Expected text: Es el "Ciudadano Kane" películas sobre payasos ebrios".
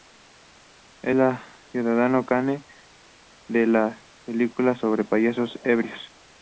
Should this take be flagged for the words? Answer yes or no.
yes